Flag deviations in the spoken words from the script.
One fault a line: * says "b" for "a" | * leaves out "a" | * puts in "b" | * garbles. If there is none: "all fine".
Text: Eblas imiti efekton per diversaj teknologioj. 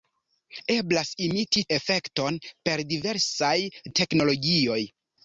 all fine